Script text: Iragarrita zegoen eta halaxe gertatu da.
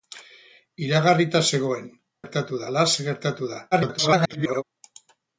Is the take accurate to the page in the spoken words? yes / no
no